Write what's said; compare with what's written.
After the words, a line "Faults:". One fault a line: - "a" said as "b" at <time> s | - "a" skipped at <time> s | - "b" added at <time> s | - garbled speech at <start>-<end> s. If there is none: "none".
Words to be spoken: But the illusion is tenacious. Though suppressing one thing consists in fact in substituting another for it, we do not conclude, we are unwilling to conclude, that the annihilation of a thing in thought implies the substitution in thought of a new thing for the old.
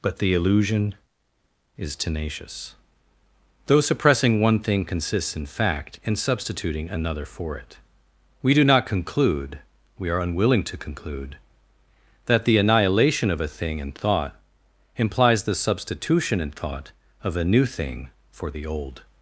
But the illusion is tenacious. Though suppressing one thing consists in fact in substituting another for it, we do not conclude, we are unwilling to conclude, that the annihilation of a thing in thought implies the substitution in thought of a new thing for the old.
Faults:
none